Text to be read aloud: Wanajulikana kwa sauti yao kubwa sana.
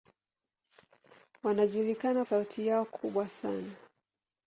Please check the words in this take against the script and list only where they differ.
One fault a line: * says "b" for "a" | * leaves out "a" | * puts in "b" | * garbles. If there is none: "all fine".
* leaves out "kwa"